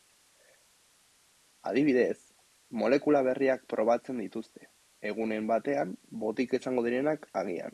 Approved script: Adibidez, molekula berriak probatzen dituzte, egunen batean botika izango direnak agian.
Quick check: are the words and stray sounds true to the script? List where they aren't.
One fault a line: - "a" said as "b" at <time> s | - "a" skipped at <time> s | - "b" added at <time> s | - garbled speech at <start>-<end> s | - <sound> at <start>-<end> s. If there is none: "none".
none